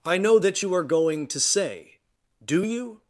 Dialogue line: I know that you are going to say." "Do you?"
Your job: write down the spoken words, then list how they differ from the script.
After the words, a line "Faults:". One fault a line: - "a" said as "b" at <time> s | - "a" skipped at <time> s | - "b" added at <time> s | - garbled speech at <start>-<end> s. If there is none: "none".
I know that you are going to say." "Do you?"
Faults:
none